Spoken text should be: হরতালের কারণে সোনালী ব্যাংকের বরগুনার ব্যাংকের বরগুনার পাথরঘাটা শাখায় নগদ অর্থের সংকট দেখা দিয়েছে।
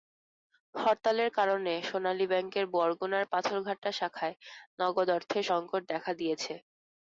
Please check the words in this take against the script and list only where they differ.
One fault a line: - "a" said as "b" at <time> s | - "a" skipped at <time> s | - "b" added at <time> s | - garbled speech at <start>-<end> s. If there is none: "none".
- "ব্যাংকের বরগুনার" skipped at 3.2 s